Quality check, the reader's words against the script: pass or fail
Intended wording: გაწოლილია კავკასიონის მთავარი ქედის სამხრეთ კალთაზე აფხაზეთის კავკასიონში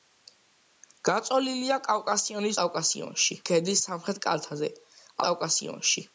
fail